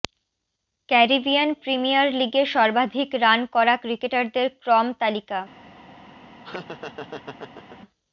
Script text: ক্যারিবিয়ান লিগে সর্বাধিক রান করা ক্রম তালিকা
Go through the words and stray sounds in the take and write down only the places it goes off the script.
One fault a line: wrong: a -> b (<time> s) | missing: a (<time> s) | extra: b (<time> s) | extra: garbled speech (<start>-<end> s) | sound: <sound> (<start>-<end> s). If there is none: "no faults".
extra: প্রিমিয়ার (1.6 s)
extra: ক্রিকেটারদের (3.8 s)
sound: laugh (6.4-7.8 s)